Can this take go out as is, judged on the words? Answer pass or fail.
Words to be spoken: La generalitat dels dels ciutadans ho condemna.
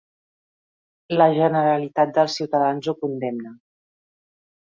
fail